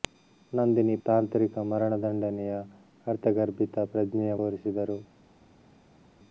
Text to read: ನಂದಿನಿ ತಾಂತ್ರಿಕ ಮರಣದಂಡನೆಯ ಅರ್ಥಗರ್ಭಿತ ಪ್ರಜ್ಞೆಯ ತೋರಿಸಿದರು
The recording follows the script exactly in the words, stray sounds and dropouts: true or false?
true